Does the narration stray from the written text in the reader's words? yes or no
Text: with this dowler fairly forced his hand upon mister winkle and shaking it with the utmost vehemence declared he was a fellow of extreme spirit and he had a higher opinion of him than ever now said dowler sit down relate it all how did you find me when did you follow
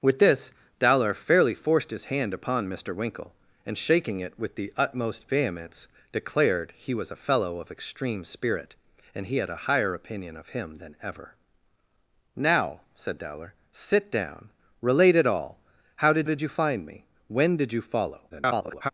yes